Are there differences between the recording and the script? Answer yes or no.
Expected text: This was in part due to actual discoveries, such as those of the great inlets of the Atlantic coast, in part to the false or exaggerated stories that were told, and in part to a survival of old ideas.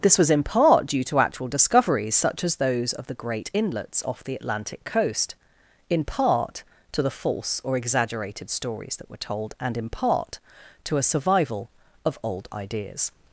yes